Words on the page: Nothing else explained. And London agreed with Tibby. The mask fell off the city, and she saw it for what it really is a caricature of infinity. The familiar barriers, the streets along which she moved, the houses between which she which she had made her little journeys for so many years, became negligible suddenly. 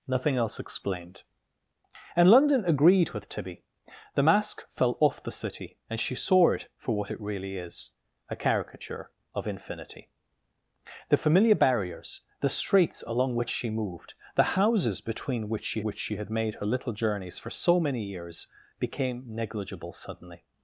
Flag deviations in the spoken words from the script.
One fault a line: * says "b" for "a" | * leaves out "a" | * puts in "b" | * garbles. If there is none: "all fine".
all fine